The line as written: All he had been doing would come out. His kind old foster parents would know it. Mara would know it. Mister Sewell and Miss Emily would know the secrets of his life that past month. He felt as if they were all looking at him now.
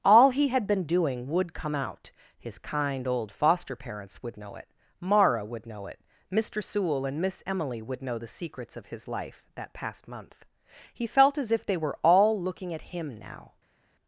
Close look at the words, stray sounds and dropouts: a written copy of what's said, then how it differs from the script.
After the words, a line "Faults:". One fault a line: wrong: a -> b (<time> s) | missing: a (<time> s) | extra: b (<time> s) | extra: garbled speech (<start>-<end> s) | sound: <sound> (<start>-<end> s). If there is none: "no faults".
All he had been doing would come out. His kind old foster parents would know it. Mara would know it. Mister Sewell and Miss Emily would know the secrets of his life that past month. He felt as if they were all looking at him now.
Faults:
no faults